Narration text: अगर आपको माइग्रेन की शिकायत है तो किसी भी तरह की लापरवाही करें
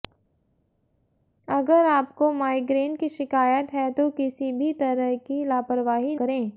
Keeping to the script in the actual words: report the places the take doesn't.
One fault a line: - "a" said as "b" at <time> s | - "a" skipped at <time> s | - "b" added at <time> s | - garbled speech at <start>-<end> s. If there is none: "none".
none